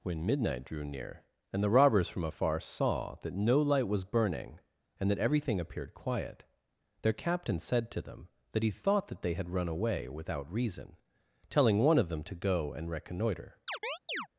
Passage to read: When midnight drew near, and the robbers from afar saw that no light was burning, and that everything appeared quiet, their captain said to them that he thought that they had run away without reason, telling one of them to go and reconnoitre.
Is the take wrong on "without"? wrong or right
right